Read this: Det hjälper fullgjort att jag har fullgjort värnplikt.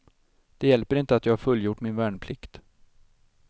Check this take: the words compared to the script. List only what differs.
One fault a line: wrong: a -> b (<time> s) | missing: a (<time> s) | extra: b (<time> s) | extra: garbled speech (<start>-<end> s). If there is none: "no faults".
wrong: fullgjort -> inte (0.9 s)
extra: min (1.8 s)